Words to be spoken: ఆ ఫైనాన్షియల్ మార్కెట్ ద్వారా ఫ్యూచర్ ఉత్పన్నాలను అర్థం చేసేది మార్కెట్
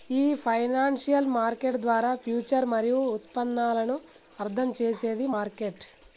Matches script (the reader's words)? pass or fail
fail